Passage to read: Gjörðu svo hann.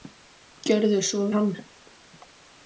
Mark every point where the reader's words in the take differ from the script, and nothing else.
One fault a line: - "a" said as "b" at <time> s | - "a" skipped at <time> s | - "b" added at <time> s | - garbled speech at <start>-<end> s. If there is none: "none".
none